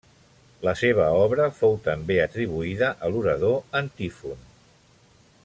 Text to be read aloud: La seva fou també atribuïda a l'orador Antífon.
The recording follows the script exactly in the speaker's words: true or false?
false